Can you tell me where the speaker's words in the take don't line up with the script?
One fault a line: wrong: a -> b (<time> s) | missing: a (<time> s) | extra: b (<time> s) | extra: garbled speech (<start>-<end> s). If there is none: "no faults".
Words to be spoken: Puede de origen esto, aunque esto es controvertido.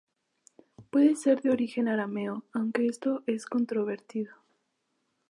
extra: ser (1.1 s)
wrong: esto -> arameo (1.9 s)